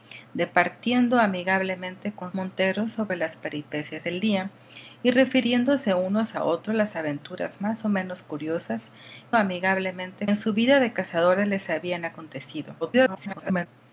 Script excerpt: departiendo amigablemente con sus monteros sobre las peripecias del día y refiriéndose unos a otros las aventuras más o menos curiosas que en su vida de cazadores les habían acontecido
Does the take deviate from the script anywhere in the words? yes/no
yes